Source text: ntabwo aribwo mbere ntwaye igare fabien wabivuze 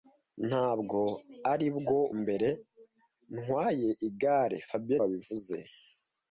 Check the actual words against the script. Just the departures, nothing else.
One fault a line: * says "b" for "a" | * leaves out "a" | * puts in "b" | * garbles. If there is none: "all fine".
all fine